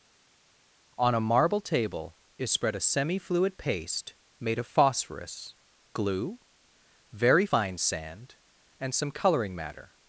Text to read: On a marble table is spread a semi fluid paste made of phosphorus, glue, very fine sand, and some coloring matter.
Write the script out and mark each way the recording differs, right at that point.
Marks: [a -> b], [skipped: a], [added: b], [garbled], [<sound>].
On a marble table is spread a semi fluid paste made of phosphorus, glue, very fine sand, and some coloring matter.